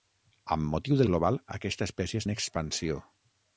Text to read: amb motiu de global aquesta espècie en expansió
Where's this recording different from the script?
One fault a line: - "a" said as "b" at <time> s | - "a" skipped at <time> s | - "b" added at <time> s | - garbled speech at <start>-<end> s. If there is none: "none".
none